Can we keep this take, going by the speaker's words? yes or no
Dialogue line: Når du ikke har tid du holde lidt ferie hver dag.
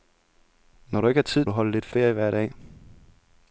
yes